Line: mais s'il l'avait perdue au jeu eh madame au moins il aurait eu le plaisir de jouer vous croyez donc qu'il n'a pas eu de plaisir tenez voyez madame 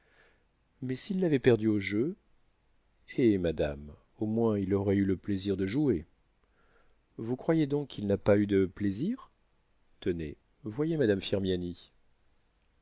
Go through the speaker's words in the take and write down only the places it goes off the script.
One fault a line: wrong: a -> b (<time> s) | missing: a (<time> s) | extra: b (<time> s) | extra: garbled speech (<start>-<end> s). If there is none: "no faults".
no faults